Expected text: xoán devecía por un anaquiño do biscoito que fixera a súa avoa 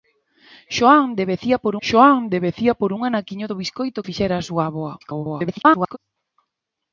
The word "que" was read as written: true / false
false